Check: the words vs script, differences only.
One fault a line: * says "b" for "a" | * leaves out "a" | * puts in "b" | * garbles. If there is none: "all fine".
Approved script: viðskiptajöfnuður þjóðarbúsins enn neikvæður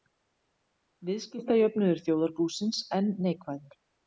all fine